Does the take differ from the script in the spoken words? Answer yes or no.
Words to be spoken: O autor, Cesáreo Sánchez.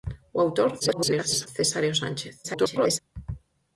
yes